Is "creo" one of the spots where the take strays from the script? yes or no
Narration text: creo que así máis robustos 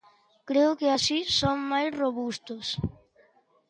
no